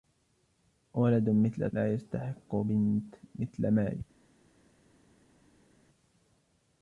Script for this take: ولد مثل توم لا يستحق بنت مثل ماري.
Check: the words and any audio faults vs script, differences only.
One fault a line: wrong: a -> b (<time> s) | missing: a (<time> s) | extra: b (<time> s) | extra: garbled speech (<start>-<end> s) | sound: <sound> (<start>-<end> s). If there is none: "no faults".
missing: توم (1.7 s)